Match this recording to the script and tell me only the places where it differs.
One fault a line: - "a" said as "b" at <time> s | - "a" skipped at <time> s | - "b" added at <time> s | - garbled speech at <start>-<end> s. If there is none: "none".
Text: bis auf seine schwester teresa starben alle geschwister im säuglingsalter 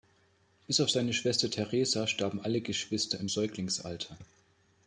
none